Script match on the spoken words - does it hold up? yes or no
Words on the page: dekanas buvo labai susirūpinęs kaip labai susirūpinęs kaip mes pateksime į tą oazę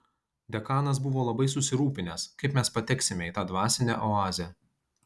no